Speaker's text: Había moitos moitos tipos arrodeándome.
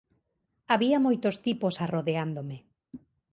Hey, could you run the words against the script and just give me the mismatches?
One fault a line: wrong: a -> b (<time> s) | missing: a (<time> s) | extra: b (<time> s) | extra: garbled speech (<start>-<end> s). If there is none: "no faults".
missing: moitos (1.4 s)